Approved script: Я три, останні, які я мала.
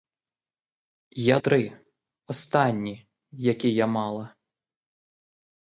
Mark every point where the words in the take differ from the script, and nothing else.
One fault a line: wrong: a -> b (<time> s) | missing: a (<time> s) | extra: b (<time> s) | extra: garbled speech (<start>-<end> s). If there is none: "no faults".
no faults